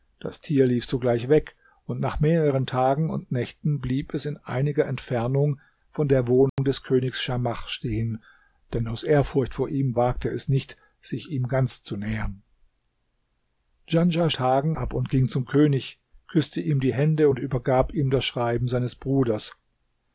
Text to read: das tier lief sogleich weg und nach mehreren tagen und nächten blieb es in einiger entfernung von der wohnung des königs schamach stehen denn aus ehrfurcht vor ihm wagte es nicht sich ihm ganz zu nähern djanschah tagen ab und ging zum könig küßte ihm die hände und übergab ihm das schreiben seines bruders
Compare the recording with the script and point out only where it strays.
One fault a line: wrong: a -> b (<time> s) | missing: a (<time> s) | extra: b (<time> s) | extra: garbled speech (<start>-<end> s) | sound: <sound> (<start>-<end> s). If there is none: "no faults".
sound: dropout (6.5-6.6 s)